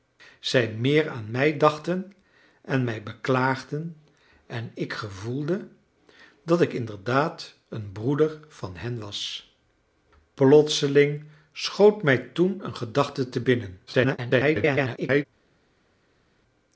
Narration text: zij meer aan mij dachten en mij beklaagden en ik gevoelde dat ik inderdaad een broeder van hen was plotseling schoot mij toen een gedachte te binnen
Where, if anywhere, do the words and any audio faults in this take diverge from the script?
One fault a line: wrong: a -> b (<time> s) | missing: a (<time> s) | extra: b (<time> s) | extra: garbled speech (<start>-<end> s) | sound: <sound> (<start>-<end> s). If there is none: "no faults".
extra: garbled speech (13.9-15.2 s)